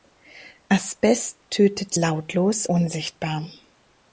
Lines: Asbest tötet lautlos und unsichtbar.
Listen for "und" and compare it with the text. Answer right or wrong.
wrong